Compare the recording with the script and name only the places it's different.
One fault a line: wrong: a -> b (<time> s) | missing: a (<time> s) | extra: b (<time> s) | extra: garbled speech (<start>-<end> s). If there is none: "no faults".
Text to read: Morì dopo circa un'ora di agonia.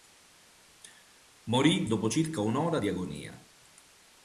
no faults